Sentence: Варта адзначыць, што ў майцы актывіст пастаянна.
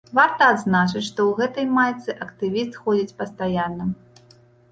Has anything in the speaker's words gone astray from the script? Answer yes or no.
yes